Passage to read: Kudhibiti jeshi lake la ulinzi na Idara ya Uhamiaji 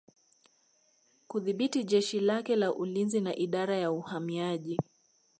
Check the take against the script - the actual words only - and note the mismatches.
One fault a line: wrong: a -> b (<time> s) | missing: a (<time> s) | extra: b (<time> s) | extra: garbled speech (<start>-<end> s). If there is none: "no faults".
no faults